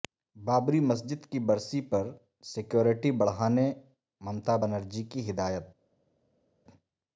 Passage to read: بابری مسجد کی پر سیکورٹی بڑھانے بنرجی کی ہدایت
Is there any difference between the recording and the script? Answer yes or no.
yes